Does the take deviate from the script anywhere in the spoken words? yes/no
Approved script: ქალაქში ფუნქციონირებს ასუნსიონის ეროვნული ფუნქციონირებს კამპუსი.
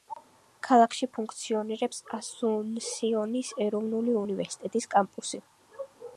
yes